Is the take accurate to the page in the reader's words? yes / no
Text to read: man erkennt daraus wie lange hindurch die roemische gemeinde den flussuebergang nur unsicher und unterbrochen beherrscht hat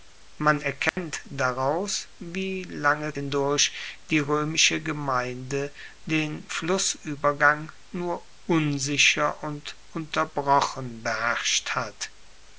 yes